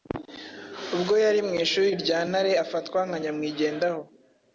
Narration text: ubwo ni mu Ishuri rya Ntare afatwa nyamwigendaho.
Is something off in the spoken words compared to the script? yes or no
yes